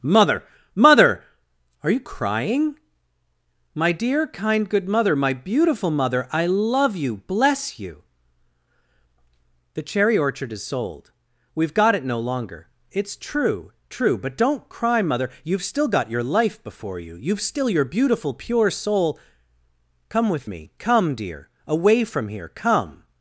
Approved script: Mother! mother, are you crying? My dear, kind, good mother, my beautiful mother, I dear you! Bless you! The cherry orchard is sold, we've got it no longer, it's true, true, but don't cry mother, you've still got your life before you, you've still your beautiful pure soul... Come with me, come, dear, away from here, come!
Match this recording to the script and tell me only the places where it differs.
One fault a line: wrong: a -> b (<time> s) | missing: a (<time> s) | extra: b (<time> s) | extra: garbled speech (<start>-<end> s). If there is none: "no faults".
wrong: dear -> love (6.5 s)